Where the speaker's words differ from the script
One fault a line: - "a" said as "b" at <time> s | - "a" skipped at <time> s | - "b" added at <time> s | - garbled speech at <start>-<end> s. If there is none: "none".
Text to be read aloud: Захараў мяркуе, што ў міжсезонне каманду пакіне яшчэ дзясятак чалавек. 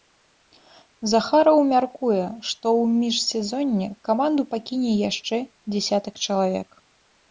none